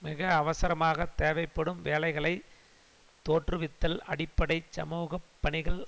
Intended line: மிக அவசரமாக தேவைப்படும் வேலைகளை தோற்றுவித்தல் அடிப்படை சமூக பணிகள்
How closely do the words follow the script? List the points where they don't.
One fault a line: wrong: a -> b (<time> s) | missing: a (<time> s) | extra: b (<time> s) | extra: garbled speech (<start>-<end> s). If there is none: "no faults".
no faults